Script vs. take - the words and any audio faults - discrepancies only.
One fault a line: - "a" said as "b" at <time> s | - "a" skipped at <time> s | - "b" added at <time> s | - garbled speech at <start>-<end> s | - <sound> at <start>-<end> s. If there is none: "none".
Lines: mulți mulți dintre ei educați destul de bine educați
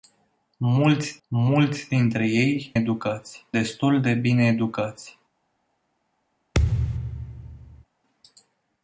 - thud at 6.5-7.8 s